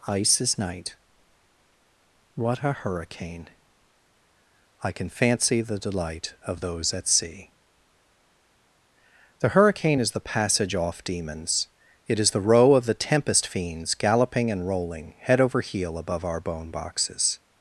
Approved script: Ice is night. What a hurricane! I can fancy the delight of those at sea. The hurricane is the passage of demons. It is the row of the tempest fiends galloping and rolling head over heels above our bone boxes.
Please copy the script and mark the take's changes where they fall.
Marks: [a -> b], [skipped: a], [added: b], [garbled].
Ice is night. What a hurricane! I can fancy the delight of those at sea. The hurricane is the passage [of -> off] demons. It is the row of the tempest fiends galloping and rolling head over [heels -> heel] above our bone boxes.